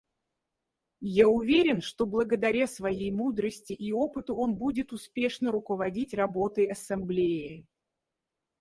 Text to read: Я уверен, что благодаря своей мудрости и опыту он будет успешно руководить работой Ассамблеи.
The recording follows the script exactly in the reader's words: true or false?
true